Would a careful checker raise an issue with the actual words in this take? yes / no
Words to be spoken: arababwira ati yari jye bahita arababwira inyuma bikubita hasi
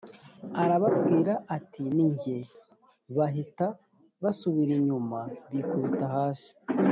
yes